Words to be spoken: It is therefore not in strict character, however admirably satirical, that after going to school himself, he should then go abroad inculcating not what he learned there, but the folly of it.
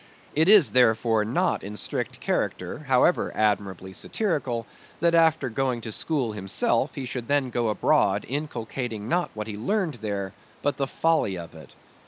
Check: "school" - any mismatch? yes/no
no